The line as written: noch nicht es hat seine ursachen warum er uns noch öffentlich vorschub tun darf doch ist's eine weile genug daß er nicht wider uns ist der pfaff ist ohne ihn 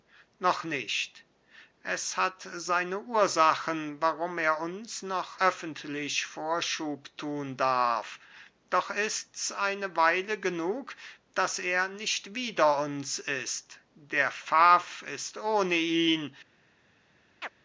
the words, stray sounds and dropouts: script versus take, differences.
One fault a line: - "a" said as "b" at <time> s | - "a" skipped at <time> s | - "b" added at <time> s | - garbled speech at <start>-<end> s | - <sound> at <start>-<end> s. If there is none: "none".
- chirp at 17.4-17.5 s